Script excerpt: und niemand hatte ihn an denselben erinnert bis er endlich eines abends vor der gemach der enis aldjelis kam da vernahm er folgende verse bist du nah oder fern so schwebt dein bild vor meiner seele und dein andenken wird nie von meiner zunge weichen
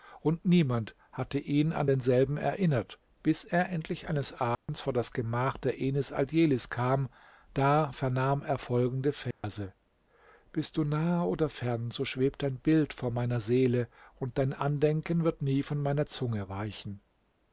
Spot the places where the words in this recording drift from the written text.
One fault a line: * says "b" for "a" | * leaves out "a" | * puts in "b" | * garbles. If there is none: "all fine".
* says "das" for "der"